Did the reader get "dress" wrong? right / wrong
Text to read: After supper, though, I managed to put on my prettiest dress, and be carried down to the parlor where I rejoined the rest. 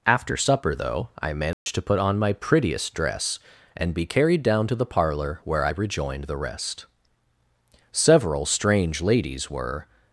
right